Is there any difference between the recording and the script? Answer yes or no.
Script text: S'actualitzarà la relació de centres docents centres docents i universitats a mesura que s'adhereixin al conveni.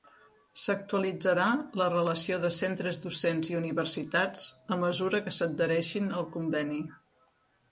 yes